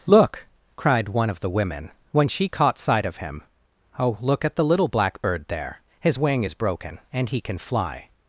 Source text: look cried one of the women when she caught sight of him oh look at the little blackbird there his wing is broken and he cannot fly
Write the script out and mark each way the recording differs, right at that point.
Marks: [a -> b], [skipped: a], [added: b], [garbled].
look cried one of the women when she caught sight of him oh look at the little blackbird there his wing is broken and he [cannot -> can] fly